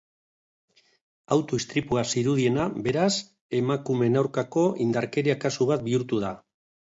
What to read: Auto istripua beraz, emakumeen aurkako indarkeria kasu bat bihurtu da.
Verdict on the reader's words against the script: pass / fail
fail